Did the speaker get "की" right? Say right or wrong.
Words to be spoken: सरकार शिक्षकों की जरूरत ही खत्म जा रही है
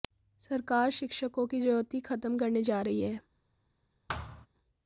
right